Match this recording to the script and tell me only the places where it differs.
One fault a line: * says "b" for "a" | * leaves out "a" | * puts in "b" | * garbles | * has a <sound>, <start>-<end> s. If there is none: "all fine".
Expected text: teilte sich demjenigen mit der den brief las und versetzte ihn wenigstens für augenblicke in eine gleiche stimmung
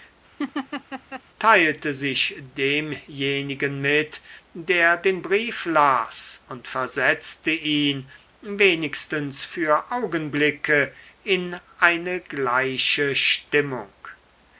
* has a laugh, 0.4-1.2 s